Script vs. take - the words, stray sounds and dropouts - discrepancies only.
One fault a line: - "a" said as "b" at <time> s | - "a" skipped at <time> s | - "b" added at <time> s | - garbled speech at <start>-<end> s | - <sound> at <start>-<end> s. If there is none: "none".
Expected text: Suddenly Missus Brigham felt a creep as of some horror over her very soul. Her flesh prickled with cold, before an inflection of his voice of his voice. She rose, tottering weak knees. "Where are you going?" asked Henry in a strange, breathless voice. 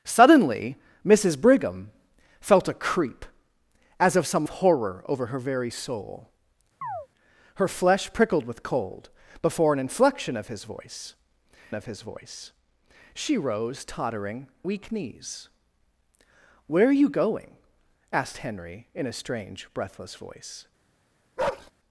- chirp at 6.8-7.1 s
- bark at 21.4-21.7 s